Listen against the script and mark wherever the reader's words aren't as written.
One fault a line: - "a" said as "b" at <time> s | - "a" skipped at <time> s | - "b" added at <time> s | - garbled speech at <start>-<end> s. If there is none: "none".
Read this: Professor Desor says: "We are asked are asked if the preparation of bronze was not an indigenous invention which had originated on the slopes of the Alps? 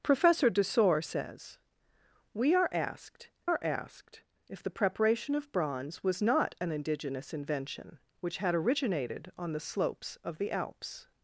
none